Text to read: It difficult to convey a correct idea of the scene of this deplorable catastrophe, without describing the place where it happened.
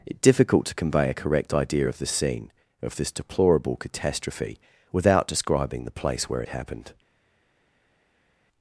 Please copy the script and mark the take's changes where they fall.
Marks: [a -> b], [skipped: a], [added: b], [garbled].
It difficult to convey a correct idea of the scene of this deplorable catastrophe, without describing the place where it happened.